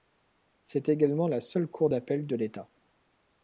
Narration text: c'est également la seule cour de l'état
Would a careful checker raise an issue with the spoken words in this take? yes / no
yes